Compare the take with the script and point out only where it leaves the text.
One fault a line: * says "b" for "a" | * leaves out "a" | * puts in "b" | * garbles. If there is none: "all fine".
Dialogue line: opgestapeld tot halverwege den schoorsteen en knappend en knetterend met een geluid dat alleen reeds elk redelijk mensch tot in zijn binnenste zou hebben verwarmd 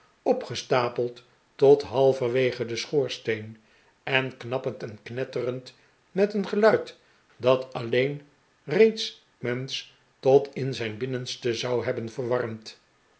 * leaves out "elk redelijk"